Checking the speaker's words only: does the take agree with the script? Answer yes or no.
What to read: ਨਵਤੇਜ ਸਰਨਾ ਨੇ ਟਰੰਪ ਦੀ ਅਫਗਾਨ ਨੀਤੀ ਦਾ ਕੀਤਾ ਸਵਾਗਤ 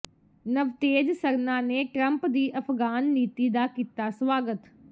yes